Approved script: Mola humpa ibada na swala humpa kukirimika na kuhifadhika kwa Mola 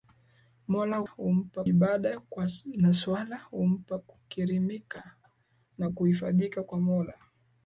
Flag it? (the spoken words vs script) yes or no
no